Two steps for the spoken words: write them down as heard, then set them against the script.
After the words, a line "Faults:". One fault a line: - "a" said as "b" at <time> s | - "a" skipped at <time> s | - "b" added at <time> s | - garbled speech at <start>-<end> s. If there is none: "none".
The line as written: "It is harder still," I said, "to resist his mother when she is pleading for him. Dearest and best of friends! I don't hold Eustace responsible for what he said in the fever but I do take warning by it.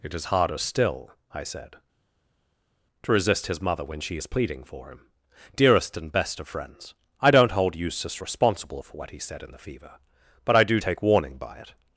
"It is harder still," I said, "to resist his mother when she is pleading for him. Dearest and best of friends! I don't hold Eustace responsible for what he said in the fever but I do take warning by it.
Faults:
none